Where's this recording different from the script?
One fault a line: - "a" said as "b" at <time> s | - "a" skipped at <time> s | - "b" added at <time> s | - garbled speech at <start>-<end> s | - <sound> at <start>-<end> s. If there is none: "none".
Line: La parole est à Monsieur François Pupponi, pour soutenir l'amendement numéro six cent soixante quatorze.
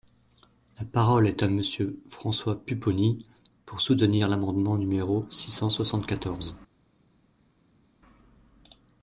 none